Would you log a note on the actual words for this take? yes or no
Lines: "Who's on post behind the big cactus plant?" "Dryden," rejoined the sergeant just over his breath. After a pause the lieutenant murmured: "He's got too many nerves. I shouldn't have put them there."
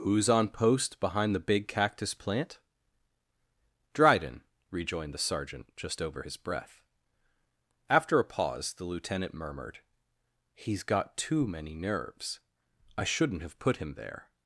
yes